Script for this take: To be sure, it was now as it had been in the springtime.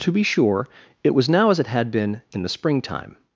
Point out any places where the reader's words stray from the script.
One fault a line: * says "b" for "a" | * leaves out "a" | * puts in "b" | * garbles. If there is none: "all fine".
all fine